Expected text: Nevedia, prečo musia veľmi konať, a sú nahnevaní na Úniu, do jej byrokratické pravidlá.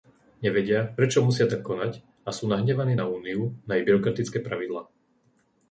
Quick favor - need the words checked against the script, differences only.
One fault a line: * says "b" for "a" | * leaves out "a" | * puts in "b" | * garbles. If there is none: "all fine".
* says "tak" for "veľmi"
* says "na" for "do"